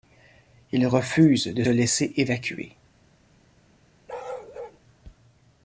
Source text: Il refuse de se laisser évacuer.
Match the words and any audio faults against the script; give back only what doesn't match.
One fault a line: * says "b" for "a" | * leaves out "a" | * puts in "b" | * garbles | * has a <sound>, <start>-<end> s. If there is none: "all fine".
* leaves out "se"
* has a bark, 4.1-4.8 s